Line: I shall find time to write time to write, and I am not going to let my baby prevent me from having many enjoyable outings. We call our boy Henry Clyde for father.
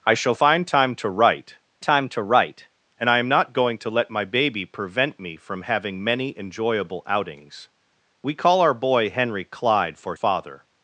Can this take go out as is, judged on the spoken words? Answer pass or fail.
pass